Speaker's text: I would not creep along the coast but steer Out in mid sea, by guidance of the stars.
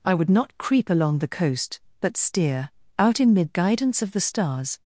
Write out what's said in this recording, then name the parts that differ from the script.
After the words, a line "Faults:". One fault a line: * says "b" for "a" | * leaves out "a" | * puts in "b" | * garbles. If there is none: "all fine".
I would not creep along the coast but steer Out in mid guidance of the stars.
Faults:
* leaves out "sea by"